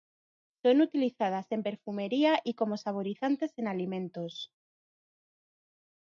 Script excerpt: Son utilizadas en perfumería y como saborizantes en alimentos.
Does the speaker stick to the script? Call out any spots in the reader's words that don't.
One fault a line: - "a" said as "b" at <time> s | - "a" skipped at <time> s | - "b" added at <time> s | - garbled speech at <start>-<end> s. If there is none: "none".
none